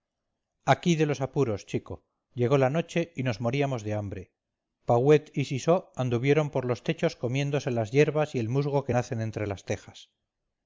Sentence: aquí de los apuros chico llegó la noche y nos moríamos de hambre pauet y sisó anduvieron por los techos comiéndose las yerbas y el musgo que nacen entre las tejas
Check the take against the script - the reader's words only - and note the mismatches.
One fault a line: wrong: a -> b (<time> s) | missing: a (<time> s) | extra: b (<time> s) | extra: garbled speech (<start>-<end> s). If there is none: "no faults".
no faults